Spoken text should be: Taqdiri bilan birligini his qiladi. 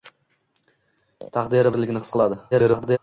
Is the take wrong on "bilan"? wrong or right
wrong